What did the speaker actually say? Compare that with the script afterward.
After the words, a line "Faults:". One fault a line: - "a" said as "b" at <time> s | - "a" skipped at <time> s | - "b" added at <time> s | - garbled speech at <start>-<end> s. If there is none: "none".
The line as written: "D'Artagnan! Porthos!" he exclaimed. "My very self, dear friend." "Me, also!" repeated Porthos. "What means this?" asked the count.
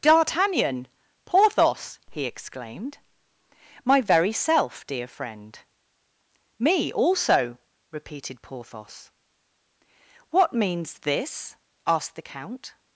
"D'Artagnan! Porthos!" he exclaimed. "My very self, dear friend." "Me, also!" repeated Porthos. "What means this?" asked the count.
Faults:
none